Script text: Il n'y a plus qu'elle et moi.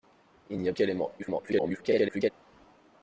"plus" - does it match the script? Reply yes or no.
no